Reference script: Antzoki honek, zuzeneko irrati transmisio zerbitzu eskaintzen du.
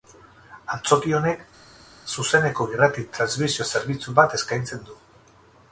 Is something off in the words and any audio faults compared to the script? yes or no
yes